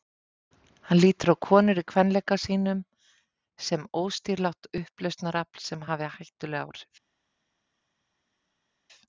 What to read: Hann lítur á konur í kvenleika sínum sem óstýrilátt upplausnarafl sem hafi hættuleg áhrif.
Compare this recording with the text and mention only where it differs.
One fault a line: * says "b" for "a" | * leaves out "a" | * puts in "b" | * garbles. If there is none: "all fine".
all fine